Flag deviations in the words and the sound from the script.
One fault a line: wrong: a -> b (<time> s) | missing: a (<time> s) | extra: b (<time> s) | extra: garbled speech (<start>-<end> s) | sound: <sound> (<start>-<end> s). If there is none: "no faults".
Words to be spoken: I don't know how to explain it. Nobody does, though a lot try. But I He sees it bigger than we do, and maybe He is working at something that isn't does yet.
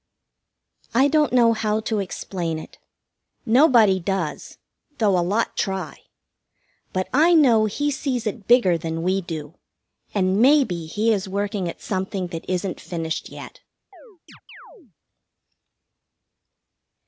extra: know (7.3 s)
wrong: does -> finished (12.8 s)
sound: chirp (13.9-14.9 s)